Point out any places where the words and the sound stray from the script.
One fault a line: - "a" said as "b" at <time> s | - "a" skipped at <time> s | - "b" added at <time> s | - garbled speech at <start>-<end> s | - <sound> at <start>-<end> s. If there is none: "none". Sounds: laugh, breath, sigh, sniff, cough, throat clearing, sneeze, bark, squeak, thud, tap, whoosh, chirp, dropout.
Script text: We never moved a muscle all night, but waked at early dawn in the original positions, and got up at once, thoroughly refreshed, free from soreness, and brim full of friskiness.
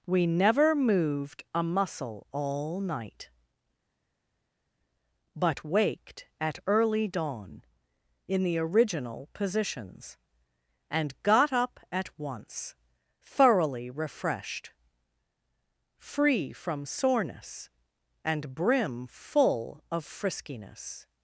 none